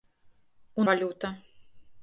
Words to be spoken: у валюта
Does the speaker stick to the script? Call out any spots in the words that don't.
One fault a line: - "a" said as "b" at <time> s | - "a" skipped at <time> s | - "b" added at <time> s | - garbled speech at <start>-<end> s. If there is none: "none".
none